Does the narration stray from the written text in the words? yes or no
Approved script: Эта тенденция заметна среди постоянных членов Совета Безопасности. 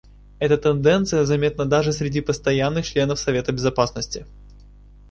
yes